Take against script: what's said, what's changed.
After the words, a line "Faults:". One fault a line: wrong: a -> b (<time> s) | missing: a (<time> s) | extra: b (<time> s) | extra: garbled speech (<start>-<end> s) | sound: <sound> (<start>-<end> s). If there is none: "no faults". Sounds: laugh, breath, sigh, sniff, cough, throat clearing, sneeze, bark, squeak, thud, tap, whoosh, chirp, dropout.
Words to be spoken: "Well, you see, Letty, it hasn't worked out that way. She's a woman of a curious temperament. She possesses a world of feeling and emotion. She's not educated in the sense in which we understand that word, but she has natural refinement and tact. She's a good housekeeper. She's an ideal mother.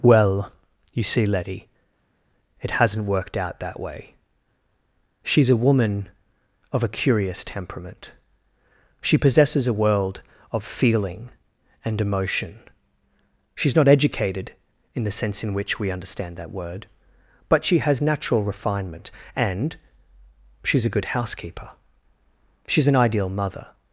"Well, you see, Letty, it hasn't worked out that way. She's a woman of a curious temperament. She possesses a world of feeling and emotion. She's not educated in the sense in which we understand that word, but she has natural refinement and. She's a good housekeeper. She's an ideal mother.
Faults:
missing: tact (19.7 s)